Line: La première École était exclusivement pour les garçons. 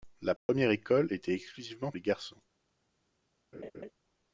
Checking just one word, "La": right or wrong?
right